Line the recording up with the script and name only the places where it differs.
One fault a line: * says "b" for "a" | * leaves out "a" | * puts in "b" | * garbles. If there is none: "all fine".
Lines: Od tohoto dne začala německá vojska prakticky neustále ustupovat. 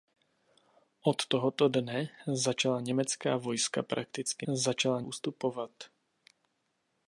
* says "začala" for "neustále"